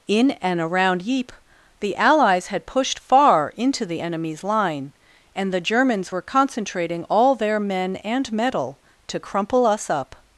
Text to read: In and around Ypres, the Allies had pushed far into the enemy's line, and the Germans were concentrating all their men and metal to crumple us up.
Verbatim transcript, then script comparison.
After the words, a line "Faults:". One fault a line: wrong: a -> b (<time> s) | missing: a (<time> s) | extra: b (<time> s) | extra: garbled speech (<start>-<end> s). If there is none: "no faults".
In and around Ypres, the Allies had pushed far into the enemy's line, and the Germans were concentrating all their men and metal to crumple us up.
Faults:
no faults